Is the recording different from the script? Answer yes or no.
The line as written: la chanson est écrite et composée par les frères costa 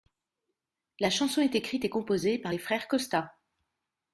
no